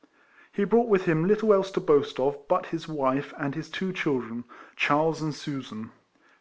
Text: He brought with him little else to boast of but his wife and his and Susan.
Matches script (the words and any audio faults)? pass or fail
fail